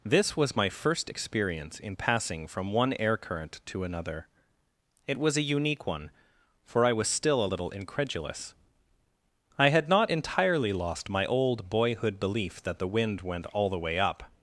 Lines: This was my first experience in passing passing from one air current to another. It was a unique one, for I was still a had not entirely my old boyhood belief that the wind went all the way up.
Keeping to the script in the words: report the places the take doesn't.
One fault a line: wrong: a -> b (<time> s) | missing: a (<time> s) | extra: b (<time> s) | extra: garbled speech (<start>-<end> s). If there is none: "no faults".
missing: passing (2.5 s)
extra: little incredulous I (7.4 s)
extra: lost (10.7 s)